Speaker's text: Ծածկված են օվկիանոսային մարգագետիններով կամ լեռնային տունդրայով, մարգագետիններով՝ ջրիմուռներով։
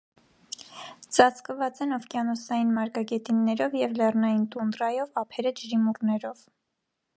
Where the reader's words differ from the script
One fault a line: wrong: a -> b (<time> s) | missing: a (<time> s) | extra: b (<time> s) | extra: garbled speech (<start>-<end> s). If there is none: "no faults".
wrong: կամ -> և (3.8 s)
wrong: մարգագետիններով -> ափերը (5.2 s)